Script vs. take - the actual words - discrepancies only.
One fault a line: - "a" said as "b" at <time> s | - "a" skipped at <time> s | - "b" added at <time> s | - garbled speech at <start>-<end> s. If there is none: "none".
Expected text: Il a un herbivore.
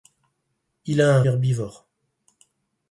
none